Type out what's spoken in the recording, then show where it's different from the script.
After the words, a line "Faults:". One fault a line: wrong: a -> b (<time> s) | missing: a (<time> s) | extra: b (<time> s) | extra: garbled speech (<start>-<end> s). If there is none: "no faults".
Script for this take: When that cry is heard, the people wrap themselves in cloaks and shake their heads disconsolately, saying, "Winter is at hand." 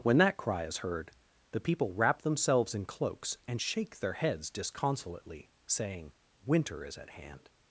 When that cry is heard, the people wrap themselves in cloaks and shake their heads disconsolately, saying, "Winter is at hand."
Faults:
no faults